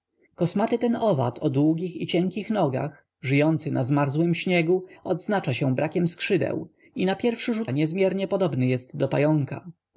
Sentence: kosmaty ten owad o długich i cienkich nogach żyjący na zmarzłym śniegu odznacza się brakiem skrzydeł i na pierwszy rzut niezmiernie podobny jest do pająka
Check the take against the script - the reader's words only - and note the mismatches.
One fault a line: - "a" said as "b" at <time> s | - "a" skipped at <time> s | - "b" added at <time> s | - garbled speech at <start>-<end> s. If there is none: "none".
none